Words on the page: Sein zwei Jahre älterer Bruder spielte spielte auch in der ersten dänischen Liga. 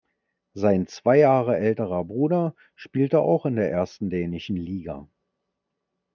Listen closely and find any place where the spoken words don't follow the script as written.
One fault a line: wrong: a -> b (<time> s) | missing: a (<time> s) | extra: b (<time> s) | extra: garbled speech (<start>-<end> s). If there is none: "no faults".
missing: spielte (3.2 s)